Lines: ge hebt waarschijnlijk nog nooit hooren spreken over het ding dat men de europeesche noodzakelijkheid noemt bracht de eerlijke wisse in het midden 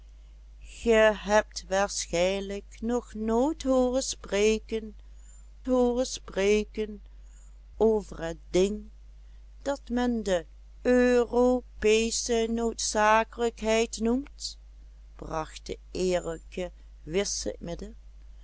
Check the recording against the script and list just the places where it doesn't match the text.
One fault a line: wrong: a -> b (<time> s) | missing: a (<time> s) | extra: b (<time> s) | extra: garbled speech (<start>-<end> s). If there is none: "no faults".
extra: hooren spreken (5.7 s)
missing: in het (17.6 s)